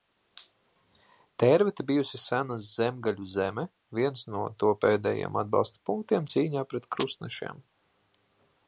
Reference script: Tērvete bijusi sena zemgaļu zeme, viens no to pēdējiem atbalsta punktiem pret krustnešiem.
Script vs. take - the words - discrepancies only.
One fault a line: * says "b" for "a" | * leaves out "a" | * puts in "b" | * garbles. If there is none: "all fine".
* puts in "cīņā"